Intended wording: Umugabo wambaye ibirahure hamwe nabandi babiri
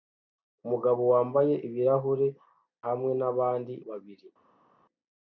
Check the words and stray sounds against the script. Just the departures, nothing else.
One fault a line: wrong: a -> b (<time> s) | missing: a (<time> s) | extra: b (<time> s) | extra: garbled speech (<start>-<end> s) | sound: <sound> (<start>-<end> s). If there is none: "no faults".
no faults